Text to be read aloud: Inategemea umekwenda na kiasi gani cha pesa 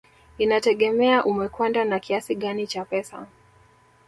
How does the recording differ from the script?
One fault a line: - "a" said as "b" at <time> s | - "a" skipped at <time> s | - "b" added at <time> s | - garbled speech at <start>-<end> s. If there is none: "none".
none